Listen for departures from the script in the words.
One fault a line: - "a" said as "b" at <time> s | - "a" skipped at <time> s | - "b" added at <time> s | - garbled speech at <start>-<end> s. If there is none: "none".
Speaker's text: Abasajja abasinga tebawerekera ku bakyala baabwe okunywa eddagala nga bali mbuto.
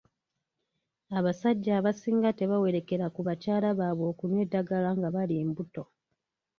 none